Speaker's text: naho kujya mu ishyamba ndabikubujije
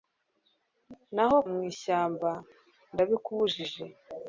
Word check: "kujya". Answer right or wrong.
wrong